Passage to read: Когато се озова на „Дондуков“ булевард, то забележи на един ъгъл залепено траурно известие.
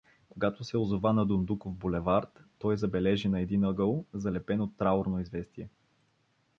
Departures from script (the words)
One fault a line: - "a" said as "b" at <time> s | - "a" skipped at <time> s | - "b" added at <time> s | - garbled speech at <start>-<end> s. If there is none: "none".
- "то" said as "той" at 2.6 s